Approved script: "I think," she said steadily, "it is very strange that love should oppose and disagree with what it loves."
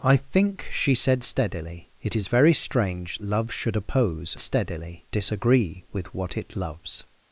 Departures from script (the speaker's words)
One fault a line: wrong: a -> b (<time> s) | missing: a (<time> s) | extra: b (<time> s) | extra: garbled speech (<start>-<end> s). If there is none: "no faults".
missing: that (3.2 s)
wrong: and -> steadily (4.4 s)